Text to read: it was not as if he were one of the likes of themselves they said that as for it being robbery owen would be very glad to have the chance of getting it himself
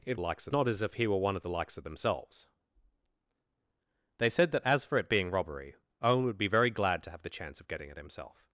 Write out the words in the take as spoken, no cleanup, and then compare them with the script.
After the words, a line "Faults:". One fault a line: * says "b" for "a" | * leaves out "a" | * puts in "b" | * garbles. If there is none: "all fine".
it likes not as if he were one of the likes of themselves they said that as for it being robbery owen would be very glad to have the chance of getting it himself
Faults:
* says "likes" for "was"